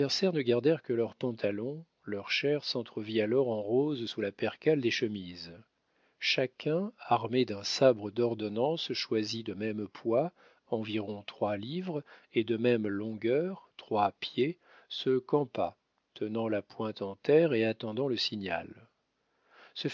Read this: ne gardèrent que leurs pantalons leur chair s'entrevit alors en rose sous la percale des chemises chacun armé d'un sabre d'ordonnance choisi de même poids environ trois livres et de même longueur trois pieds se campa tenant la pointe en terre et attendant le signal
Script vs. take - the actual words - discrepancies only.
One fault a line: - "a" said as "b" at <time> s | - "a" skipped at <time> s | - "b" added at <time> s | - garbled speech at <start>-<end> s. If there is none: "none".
none